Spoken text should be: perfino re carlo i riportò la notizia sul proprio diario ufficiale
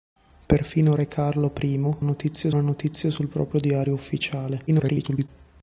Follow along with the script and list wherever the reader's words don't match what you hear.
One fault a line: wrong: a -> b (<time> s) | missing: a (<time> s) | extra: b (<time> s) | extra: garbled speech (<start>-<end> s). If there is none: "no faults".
wrong: riportò -> notizia (2.0 s)
extra: garbled speech (4.7-5.3 s)